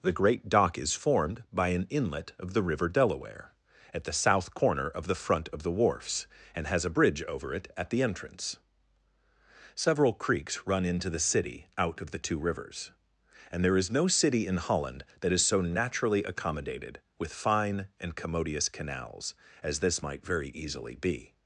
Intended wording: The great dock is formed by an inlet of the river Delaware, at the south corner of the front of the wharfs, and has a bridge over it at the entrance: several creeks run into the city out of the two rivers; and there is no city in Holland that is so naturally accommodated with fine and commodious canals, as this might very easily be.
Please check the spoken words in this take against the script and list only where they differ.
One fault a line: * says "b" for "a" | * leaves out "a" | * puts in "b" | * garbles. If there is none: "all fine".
all fine